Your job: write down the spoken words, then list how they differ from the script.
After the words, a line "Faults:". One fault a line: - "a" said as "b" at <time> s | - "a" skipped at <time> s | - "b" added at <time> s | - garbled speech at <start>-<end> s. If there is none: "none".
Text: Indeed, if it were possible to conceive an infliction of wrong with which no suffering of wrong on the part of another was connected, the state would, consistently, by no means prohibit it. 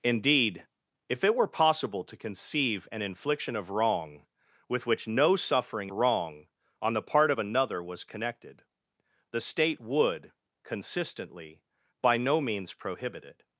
Indeed, if it were possible to conceive an infliction of wrong with which no suffering wrong on the part of another was connected, the state would, consistently, by no means prohibit it.
Faults:
- "of" skipped at 5.9 s